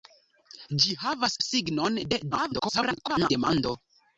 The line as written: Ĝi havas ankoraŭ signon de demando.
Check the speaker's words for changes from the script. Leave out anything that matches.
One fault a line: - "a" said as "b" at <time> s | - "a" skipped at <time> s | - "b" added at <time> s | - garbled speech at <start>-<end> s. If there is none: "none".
- "ankoraŭ" skipped at 1.4 s
- garbled speech at 2.3-3.3 s